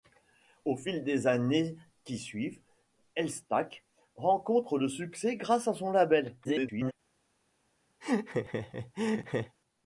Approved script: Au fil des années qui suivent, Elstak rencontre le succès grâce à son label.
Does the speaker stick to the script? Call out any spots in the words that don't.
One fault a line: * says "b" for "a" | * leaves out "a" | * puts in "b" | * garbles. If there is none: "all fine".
* garbles